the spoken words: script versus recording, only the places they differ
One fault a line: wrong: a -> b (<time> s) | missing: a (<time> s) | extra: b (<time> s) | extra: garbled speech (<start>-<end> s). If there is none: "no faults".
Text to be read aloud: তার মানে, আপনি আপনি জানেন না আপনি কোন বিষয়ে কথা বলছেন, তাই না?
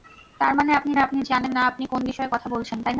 no faults